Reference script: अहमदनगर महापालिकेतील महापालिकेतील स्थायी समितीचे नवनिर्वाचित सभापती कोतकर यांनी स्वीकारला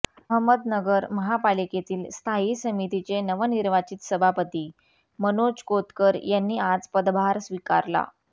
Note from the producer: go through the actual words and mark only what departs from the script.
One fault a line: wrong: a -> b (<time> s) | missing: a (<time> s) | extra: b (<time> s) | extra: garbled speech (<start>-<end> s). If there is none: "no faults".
missing: महापालिकेतील (2.0 s)
extra: मनोज (5.2 s)
extra: आज पदभार (6.7 s)